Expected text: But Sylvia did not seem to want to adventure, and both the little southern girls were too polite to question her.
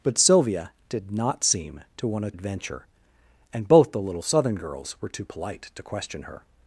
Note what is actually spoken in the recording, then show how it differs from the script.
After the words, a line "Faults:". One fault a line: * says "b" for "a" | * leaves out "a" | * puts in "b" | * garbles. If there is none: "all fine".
But Sylvia did not seem to want to adventure, and both the little southern girls were too polite to question her.
Faults:
all fine